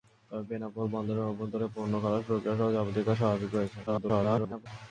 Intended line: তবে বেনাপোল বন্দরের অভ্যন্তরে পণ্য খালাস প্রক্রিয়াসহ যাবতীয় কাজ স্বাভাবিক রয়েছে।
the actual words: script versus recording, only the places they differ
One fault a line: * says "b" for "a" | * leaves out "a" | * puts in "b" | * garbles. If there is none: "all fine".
* garbles